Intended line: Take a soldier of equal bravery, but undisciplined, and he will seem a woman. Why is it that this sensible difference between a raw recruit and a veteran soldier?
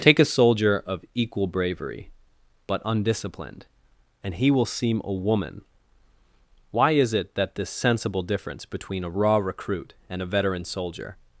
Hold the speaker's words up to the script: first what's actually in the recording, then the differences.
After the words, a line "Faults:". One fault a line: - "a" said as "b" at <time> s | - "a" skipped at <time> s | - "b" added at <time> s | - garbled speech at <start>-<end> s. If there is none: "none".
Take a soldier of equal bravery, but undisciplined, and he will seem a woman. Why is it that this sensible difference between a raw recruit and a veteran soldier?
Faults:
none